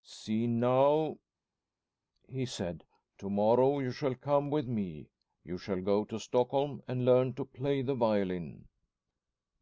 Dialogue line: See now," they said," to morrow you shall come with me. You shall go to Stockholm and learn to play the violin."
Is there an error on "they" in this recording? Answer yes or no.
yes